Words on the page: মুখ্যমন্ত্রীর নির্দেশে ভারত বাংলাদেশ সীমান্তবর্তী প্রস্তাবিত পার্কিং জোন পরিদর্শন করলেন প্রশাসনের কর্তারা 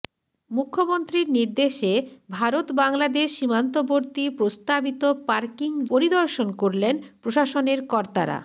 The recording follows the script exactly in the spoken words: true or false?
false